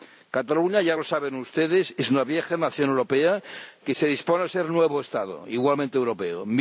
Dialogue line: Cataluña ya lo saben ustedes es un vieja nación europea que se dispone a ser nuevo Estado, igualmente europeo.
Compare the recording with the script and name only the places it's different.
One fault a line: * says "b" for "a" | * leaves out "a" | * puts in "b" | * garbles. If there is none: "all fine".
* says "una" for "un"